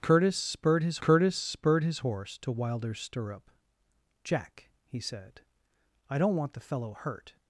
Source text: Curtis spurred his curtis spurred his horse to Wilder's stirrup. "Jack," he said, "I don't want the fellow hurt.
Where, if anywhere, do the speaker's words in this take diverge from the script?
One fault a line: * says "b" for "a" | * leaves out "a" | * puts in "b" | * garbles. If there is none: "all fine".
all fine